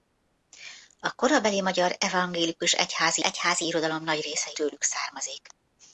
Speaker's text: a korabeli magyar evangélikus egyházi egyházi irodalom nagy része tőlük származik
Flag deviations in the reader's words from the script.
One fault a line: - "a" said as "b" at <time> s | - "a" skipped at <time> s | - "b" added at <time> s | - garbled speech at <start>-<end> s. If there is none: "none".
none